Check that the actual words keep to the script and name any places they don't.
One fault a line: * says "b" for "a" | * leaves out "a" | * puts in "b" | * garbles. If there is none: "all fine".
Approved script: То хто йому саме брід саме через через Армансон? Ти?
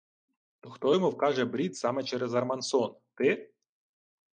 * says "вкаже" for "саме"
* leaves out "через"